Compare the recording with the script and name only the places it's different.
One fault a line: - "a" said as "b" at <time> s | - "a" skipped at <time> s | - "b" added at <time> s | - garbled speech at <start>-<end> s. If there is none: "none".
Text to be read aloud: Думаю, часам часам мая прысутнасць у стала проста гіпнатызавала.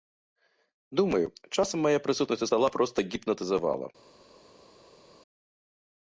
- "часам" skipped at 1.8 s